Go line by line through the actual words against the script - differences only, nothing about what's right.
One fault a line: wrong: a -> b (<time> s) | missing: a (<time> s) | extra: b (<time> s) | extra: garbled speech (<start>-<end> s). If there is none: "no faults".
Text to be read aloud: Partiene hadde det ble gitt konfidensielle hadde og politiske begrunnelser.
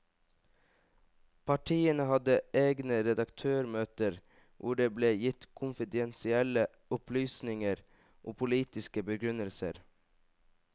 extra: egne redaktørmøter hvor (2.6 s)
wrong: hadde -> opplysninger (7.0 s)